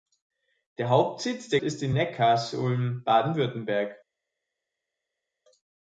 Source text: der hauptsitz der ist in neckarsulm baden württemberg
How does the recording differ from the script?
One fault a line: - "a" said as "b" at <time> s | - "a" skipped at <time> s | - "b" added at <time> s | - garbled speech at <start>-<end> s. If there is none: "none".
none